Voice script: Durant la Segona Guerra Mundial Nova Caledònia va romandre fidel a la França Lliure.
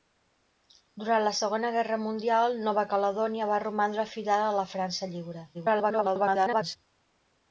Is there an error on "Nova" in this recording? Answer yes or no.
no